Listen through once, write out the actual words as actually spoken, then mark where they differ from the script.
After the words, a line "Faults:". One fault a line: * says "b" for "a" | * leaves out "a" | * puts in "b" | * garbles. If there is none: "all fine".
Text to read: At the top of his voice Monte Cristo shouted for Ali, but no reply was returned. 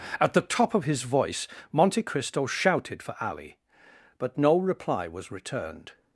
At the top of his voice Monte Cristo shouted for Ali, but no reply was returned.
Faults:
all fine